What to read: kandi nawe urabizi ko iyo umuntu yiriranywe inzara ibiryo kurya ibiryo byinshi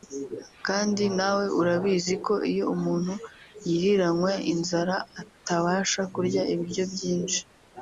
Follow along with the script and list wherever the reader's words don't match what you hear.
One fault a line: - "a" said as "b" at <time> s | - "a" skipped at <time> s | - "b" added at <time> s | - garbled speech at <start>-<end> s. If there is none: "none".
- "ibiryo" said as "atabasha" at 5.2 s